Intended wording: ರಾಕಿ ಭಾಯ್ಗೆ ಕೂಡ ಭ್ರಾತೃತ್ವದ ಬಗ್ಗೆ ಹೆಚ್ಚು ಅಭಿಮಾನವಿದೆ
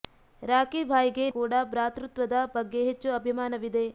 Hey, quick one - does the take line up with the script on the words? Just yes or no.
yes